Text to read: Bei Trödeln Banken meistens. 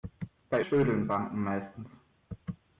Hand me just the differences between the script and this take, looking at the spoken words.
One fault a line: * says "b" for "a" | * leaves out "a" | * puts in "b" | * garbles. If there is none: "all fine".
all fine